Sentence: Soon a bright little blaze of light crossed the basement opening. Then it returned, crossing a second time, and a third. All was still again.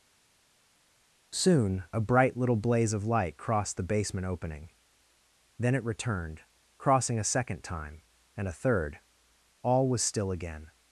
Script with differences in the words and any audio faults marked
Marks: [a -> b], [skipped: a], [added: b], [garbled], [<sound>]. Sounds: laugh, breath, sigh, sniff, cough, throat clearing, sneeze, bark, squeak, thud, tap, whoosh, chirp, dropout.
Soon a bright little blaze of light crossed the basement opening. Then it returned, crossing a second time, and a third. All was still again.